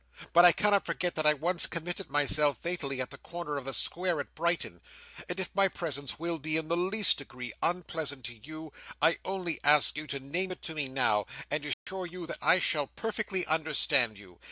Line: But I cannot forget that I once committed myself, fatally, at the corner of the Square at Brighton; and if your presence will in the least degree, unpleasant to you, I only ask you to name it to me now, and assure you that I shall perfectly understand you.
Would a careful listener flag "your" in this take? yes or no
yes